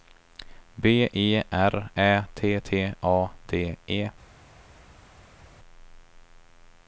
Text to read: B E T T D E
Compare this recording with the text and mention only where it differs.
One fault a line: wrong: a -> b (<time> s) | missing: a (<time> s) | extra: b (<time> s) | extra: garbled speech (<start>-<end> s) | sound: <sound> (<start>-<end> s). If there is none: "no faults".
extra: R Ä (1.5 s)
extra: A (3.0 s)